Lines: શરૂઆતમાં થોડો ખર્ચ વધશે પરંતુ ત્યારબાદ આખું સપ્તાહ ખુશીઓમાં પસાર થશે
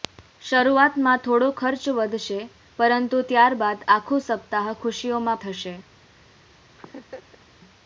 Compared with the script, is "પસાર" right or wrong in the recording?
wrong